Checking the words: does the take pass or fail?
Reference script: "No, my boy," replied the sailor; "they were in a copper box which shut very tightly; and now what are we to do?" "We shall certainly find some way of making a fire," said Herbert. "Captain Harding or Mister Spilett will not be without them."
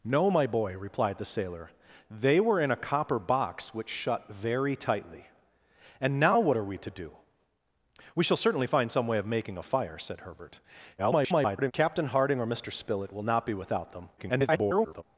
fail